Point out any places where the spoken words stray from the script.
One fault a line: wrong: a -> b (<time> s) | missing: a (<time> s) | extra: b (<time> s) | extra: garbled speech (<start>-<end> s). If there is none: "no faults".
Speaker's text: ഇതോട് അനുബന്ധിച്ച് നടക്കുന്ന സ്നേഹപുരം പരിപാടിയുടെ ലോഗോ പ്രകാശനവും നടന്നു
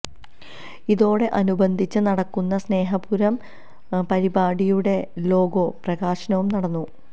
no faults